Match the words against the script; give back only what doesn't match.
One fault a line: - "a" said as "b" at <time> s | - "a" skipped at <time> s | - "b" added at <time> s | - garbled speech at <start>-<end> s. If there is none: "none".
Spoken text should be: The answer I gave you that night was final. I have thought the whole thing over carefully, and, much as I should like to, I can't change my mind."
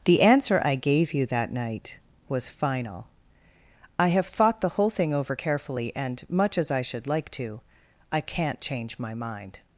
none